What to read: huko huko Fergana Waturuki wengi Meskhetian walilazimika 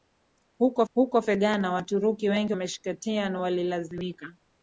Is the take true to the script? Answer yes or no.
yes